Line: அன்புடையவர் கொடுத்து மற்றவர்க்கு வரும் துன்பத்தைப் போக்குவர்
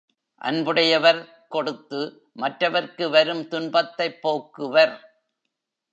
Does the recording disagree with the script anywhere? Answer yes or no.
no